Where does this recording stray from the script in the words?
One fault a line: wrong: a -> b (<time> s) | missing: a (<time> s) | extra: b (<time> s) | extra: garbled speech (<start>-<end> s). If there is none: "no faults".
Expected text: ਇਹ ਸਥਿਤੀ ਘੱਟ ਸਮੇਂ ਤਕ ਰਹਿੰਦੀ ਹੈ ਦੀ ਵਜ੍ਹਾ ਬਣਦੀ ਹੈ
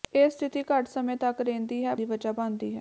no faults